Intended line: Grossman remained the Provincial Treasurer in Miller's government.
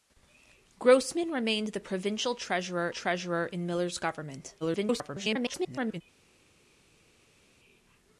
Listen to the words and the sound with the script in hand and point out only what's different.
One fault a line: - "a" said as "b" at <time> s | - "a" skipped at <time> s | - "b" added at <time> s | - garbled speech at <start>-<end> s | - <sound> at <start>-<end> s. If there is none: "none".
- "Treasurer" added at 2.9 s
- garbled speech at 4.6-6.0 s